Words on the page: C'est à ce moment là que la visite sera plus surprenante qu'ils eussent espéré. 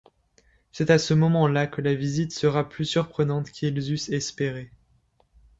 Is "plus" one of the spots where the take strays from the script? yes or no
no